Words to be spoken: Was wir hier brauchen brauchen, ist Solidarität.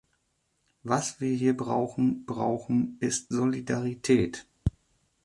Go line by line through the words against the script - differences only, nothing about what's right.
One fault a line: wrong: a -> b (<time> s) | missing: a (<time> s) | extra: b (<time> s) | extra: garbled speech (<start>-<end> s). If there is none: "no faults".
no faults